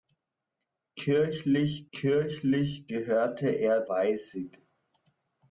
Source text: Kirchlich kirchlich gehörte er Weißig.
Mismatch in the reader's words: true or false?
false